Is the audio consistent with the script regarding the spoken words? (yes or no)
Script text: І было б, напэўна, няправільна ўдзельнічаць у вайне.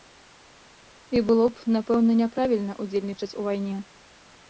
yes